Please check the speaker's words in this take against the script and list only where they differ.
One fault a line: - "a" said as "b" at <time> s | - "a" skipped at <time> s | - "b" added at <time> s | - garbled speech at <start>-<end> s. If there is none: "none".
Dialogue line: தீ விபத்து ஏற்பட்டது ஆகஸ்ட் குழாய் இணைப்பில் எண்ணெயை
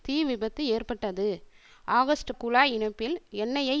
none